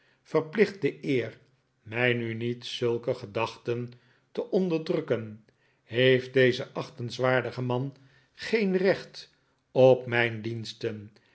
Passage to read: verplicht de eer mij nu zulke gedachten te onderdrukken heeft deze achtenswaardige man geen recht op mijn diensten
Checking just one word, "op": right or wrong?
right